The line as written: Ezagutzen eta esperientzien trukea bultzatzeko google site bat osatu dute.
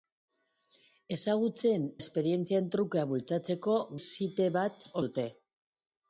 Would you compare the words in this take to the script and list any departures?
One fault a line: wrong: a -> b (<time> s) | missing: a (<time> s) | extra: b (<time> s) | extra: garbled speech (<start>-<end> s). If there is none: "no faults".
missing: eta (1.9 s)
missing: google (3.8 s)
missing: osatu (4.9 s)